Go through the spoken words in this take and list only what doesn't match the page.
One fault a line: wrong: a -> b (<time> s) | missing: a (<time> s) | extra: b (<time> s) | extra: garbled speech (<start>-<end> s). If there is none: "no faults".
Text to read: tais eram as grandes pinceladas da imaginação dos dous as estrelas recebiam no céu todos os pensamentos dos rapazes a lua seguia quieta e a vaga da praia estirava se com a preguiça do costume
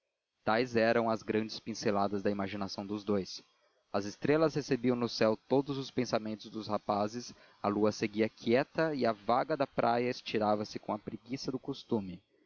no faults